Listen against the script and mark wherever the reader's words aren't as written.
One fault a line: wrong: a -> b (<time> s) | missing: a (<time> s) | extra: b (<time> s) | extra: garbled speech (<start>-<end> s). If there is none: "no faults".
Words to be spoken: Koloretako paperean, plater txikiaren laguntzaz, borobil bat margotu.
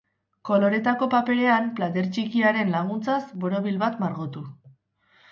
no faults